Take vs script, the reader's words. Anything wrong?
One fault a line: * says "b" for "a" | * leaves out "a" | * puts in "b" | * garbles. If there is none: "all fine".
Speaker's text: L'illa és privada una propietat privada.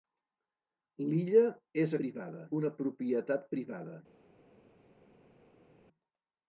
all fine